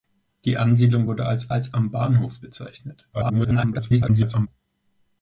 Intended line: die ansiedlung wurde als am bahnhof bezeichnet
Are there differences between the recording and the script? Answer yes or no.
yes